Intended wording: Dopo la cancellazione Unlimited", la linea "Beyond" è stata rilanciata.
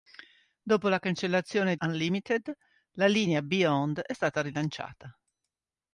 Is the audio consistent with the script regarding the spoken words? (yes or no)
yes